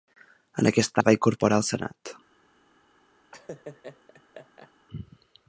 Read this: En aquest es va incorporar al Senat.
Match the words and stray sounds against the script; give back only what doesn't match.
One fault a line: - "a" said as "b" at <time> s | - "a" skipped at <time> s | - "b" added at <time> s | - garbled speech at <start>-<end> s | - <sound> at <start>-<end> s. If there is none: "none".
- laugh at 3.3-4.7 s